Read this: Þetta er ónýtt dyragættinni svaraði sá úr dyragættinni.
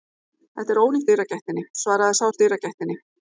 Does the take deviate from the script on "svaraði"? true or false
false